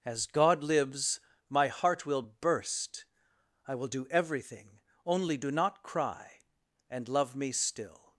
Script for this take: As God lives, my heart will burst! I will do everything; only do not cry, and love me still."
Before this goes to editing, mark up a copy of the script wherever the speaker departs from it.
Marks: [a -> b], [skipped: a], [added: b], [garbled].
As God lives, my heart will burst! I will do everything; only do not cry, and love me still."